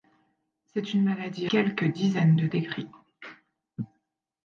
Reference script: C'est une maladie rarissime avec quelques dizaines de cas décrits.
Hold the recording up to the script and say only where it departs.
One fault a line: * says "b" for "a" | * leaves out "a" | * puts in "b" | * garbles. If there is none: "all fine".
* leaves out "rarissime avec"
* leaves out "cas"